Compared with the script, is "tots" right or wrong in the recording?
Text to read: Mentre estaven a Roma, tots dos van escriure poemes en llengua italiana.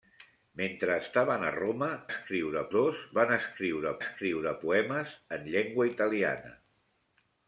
wrong